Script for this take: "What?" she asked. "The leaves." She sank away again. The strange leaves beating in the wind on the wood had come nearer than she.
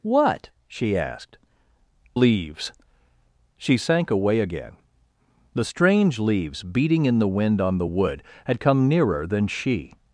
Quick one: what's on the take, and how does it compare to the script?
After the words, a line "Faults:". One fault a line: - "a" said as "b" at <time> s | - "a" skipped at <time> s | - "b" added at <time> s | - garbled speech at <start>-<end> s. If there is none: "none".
"What?" she asked. "Leaves." She sank away again. The strange leaves beating in the wind on the wood had come nearer than she.
Faults:
- "The" skipped at 1.4 s